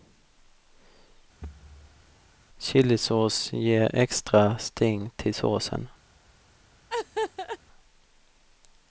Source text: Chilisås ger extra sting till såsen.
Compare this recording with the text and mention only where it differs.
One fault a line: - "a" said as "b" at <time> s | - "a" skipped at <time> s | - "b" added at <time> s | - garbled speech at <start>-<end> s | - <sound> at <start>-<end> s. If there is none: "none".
- thud at 1.4-2.2 s
- laugh at 6.9-7.6 s